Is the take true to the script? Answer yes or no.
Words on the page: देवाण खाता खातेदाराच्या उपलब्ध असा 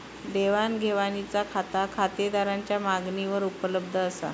no